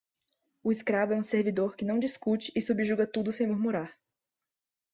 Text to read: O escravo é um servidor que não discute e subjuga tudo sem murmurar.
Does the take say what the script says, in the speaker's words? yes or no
yes